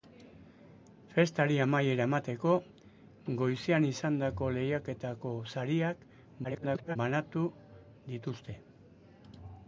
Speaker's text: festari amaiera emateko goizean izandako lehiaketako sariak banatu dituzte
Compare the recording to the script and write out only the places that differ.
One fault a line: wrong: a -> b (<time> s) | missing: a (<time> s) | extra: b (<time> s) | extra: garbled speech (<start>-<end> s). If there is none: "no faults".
extra: garbled speech (6.4-7.0 s)